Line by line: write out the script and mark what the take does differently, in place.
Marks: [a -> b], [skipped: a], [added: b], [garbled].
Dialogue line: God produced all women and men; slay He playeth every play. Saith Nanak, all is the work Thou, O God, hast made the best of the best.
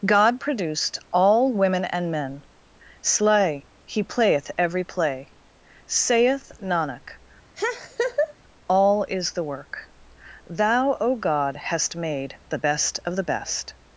God produced all women and men; slay He playeth every play. Saith Nanak, all is the work Thou, O God, hast made the best of the best.